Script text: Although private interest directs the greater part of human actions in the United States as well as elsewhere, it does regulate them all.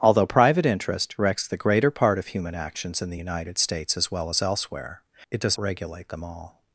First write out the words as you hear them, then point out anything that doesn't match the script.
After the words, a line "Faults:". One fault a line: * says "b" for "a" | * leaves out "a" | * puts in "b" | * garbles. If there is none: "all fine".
Although private interest directs the greater part of human actions in the United States as well as elsewhere, it does regulate them all.
Faults:
all fine